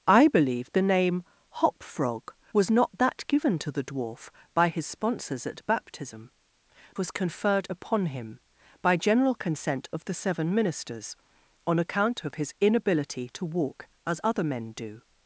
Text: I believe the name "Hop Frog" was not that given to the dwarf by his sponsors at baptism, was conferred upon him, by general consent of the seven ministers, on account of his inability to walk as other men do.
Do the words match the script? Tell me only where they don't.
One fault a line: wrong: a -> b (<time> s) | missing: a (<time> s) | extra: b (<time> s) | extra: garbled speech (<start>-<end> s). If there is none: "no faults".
no faults